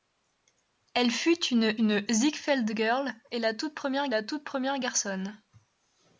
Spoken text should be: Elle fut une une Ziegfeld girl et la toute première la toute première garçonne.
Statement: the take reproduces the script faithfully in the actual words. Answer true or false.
true